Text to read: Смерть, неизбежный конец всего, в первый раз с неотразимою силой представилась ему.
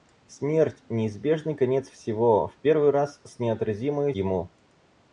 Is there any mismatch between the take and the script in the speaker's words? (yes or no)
yes